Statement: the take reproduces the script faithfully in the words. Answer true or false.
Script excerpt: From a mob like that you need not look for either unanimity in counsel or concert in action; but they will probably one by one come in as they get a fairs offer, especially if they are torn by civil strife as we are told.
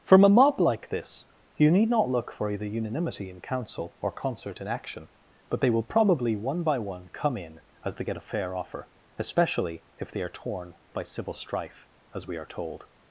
false